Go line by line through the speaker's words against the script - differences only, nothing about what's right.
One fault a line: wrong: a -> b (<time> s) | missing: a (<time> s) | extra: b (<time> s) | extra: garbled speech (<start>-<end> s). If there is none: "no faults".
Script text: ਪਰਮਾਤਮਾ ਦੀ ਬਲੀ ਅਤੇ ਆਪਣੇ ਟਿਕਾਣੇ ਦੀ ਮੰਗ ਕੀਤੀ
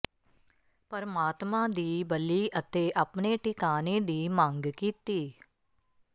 no faults